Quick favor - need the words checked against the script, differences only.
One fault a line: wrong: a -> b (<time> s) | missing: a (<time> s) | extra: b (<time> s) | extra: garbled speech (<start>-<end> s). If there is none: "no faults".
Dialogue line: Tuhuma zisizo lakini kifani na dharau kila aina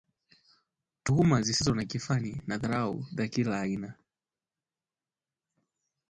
wrong: lakini -> na (1.8 s)
extra: za (3.1 s)